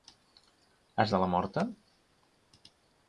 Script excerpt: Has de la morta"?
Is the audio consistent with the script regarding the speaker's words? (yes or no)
yes